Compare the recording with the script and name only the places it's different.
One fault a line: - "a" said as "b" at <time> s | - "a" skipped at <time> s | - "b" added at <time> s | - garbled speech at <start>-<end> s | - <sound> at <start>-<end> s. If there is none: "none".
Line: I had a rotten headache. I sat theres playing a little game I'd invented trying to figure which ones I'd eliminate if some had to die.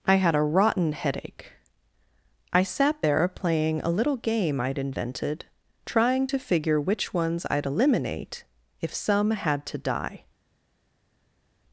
- "theres" said as "there" at 3.0 s